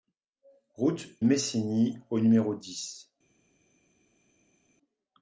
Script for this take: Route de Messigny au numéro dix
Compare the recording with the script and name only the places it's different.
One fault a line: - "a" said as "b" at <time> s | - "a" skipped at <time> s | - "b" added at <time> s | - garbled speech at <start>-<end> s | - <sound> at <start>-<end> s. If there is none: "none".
- "de" skipped at 1.1 s